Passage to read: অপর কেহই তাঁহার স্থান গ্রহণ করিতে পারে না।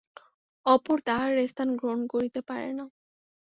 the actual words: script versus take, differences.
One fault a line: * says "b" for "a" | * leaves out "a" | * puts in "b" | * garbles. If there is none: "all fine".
* leaves out "কেহই"